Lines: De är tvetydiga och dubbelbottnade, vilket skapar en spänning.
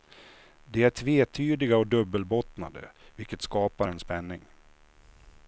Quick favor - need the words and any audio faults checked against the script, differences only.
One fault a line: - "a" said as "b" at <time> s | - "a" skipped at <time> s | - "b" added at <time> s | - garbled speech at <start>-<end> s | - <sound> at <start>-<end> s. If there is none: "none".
none